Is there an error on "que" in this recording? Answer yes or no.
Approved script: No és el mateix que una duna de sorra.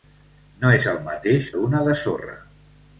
yes